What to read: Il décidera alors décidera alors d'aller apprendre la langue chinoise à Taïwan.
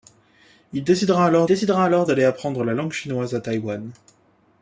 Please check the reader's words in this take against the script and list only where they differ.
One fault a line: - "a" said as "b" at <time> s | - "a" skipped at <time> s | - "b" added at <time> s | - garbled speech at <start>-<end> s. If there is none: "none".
none